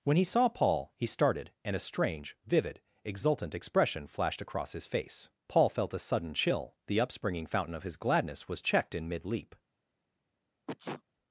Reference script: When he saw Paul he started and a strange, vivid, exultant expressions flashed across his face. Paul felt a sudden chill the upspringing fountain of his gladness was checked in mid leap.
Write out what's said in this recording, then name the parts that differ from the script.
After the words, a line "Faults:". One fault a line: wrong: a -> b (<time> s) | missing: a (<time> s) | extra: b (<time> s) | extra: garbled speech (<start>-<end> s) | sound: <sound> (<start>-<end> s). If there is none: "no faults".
When he saw Paul he started and a strange, vivid, exultant expression flashed across his face. Paul felt a sudden chill the upspringing fountain of his gladness was checked in mid leap.
Faults:
wrong: expressions -> expression (3.5 s)
sound: sneeze (10.7-11.0 s)